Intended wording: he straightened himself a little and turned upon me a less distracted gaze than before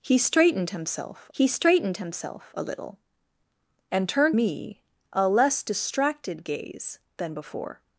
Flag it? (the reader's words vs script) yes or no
yes